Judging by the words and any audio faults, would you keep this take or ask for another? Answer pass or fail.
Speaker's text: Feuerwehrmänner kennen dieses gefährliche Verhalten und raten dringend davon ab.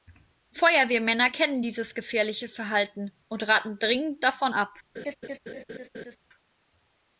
fail